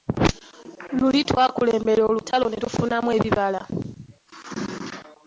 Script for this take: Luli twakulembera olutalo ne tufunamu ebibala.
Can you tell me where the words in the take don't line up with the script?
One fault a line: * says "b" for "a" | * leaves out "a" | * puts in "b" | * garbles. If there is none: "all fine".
all fine